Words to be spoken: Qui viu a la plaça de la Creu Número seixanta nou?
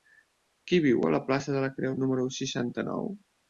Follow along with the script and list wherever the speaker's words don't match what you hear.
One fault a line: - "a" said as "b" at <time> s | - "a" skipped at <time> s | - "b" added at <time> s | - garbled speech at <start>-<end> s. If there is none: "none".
none